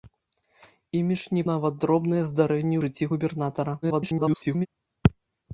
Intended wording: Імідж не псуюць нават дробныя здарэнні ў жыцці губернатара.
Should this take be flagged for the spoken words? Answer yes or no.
yes